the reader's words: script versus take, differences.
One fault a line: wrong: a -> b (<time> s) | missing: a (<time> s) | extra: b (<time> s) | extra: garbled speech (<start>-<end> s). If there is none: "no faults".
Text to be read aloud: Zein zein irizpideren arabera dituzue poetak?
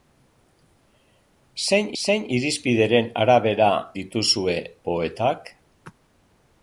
no faults